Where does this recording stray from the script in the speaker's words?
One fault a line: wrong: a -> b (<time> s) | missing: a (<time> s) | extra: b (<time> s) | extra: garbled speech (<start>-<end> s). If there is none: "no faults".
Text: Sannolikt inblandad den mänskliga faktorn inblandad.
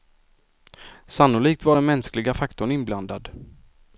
wrong: inblandad -> var (1.6 s)